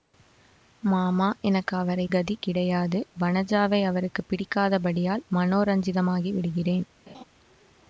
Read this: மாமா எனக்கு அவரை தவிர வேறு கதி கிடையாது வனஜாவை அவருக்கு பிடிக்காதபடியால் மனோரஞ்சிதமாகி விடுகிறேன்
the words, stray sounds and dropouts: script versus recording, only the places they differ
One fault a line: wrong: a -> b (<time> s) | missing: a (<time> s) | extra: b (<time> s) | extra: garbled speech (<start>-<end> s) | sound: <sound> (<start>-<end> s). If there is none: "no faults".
missing: தவிர வேறு (2.0 s)
sound: laugh (7.1-7.2 s)